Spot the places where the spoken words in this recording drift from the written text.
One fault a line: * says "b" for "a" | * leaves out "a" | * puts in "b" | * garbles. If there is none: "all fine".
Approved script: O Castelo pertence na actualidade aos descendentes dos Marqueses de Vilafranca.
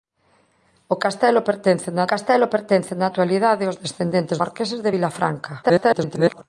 * puts in "Castelo pertence na"
* leaves out "dos"
* garbles